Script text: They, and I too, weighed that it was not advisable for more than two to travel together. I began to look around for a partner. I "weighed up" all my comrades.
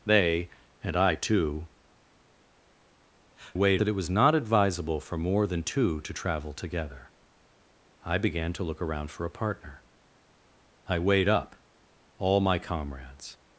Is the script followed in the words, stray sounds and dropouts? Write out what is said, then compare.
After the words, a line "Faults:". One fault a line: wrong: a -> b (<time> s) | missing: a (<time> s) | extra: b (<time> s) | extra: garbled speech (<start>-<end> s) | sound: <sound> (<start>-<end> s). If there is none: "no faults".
They, and I too, weighed that it was not advisable for more than two to travel together. I began to look around for a partner. I "weighed up" all my comrades.
Faults:
no faults